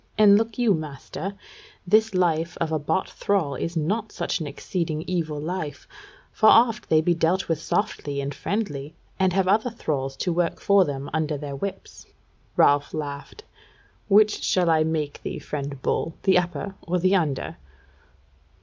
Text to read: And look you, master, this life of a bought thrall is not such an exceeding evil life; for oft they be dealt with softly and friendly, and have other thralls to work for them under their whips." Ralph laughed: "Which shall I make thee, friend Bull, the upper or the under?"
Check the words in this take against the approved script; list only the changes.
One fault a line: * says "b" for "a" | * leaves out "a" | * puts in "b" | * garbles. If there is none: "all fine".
all fine